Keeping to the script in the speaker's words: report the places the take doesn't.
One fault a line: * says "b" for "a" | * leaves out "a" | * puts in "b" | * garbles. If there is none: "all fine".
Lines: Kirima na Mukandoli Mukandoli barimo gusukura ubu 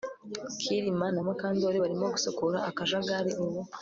* leaves out "Mukandoli"
* puts in "akajagari"